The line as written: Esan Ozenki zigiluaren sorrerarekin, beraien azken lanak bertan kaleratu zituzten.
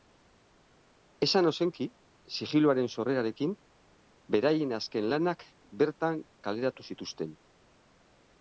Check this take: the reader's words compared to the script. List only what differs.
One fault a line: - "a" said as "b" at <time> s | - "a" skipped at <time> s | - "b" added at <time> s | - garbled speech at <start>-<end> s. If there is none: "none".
none